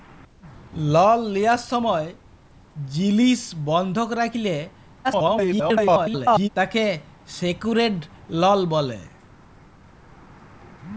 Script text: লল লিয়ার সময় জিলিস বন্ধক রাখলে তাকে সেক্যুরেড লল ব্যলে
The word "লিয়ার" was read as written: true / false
true